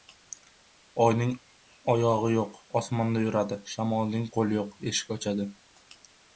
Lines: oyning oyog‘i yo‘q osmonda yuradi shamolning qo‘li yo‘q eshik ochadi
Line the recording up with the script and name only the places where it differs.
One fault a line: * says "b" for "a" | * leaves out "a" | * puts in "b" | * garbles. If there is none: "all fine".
all fine